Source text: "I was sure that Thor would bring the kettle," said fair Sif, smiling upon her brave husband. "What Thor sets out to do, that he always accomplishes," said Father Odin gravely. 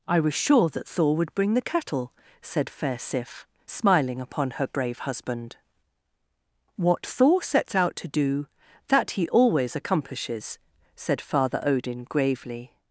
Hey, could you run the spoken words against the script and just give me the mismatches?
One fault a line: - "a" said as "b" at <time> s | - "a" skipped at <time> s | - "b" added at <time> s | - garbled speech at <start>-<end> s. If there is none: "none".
none